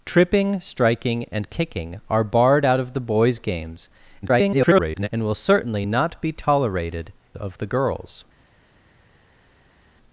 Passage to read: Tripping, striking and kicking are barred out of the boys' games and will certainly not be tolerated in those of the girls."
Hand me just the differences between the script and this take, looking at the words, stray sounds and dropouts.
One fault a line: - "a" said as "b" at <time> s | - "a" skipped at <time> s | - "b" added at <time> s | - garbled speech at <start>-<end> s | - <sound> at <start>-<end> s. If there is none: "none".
- garbled speech at 4.2-5.1 s
- "in those" skipped at 7.1 s